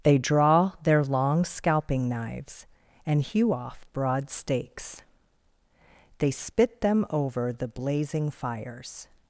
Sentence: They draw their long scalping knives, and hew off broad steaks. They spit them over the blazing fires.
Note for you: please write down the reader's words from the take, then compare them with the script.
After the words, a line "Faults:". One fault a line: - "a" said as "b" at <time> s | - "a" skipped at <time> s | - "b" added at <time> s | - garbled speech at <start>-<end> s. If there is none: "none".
They draw their long scalping knives, and hew off broad steaks. They spit them over the blazing fires.
Faults:
none